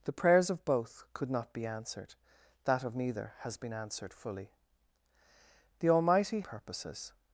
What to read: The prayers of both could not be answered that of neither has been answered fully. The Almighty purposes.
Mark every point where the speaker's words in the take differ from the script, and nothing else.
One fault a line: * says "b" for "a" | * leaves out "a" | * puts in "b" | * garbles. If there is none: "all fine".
all fine